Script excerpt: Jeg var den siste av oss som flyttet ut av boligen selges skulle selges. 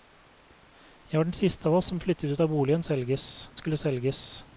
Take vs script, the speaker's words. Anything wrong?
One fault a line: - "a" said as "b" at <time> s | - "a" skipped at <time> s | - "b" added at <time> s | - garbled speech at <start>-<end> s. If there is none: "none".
none